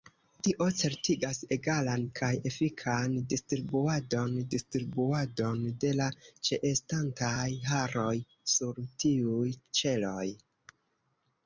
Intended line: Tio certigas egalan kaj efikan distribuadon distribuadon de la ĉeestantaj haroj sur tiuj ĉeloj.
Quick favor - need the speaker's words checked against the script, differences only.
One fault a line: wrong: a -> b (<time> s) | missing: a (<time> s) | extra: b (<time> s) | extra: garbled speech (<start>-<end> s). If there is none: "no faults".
no faults